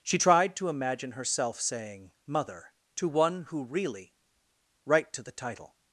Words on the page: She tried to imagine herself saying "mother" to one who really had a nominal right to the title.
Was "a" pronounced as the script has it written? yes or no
no